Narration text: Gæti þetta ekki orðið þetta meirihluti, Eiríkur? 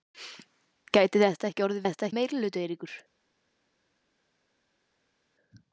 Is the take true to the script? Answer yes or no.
yes